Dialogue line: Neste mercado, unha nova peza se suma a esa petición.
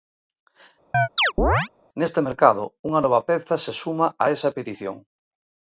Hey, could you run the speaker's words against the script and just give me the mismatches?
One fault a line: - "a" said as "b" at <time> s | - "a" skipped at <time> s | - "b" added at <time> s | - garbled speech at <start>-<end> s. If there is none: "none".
none